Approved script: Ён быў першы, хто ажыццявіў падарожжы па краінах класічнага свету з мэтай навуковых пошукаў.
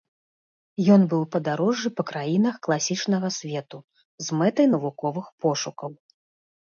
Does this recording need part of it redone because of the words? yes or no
yes